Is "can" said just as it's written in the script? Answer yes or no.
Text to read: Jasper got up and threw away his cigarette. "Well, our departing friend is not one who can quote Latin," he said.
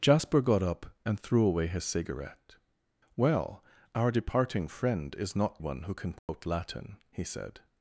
yes